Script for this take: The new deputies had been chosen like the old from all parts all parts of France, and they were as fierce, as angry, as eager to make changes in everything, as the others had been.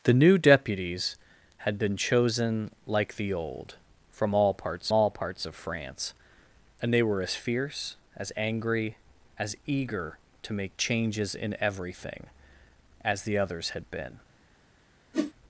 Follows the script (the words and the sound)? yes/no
no